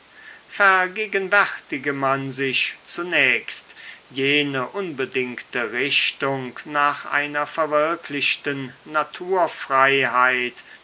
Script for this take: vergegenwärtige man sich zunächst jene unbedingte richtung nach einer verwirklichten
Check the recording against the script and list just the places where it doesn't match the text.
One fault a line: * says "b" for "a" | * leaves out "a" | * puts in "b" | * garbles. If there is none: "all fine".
all fine